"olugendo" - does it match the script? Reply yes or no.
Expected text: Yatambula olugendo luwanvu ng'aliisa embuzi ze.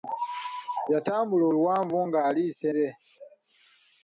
no